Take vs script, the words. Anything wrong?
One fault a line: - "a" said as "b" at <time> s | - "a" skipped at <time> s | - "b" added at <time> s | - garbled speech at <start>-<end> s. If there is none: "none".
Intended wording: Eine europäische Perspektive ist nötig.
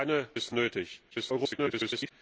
- "europäische Perspektive" skipped at 0.3 s
- garbled speech at 1.1-2.1 s